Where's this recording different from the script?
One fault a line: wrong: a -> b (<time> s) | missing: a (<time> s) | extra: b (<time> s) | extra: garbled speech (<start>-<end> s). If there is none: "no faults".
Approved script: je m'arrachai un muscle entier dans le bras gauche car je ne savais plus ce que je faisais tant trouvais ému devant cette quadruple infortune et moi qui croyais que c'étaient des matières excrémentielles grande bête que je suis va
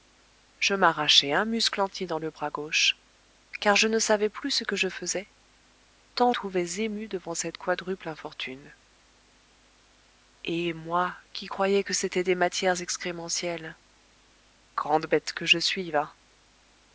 no faults